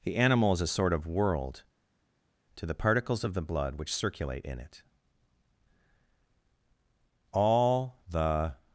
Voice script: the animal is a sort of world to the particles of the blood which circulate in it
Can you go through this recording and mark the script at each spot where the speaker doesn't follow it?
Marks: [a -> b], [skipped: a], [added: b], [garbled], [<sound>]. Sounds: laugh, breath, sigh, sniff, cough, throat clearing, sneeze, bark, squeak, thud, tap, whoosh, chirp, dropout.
the animal is a sort of world to the particles of the blood which circulate in it [added: all the]